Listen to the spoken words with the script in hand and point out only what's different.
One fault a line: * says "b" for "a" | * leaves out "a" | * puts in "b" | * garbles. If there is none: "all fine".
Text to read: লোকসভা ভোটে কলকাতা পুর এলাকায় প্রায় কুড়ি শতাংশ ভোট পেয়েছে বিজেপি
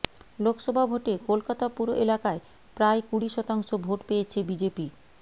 all fine